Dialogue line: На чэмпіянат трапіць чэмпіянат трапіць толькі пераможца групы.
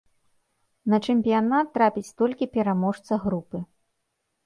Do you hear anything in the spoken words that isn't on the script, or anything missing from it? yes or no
yes